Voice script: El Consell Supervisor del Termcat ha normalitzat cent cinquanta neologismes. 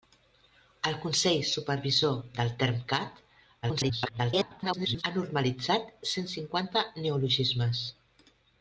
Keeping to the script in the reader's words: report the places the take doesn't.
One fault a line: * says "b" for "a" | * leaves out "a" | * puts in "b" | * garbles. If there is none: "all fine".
* garbles